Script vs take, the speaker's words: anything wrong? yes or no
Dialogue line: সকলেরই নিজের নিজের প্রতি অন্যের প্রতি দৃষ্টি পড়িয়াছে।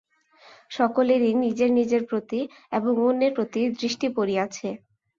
yes